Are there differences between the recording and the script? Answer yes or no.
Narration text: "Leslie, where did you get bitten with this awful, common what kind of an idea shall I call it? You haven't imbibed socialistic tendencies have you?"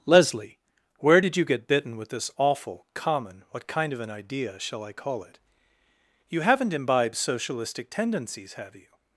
no